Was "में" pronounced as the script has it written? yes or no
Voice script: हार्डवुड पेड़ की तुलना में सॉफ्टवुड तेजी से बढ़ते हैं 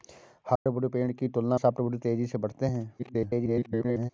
no